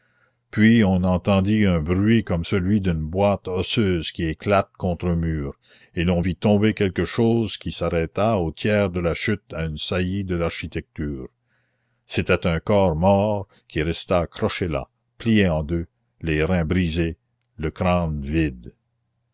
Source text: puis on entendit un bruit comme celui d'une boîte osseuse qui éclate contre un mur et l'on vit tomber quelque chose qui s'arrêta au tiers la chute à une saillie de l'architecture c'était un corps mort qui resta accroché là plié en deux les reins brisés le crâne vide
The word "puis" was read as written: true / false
true